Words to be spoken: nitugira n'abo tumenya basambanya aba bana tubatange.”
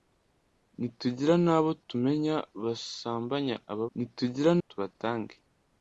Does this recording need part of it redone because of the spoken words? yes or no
yes